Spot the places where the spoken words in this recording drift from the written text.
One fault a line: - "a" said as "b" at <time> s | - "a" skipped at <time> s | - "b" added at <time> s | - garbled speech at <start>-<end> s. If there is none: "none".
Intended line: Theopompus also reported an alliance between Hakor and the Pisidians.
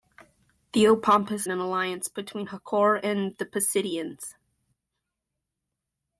- "also reported" skipped at 1.5 s